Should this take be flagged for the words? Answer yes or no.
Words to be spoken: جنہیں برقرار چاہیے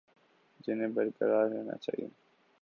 yes